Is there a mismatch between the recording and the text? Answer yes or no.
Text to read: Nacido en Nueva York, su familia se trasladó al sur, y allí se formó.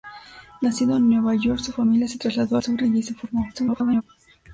yes